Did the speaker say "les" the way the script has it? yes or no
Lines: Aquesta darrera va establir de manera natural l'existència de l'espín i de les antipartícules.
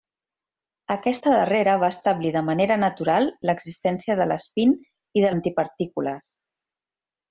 no